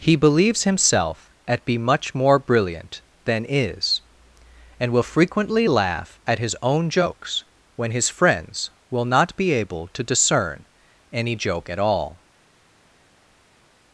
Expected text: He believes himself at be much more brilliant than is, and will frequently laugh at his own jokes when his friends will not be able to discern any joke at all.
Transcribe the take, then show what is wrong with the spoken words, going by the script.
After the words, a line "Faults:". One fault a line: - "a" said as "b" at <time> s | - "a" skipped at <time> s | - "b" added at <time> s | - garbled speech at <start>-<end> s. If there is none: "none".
He believes himself at be much more brilliant than is, and will frequently laugh at his own jokes when his friends will not be able to discern any joke at all.
Faults:
none